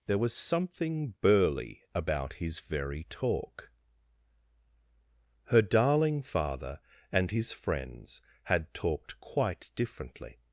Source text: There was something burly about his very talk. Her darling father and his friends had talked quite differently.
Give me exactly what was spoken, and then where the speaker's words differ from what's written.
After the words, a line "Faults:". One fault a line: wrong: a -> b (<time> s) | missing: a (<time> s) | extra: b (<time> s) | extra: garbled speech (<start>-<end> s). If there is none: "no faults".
There was something burly about his very talk. Her darling father and his friends had talked quite differently.
Faults:
no faults